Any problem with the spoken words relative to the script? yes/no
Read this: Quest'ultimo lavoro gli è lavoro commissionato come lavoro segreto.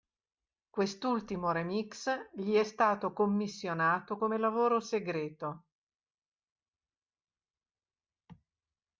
yes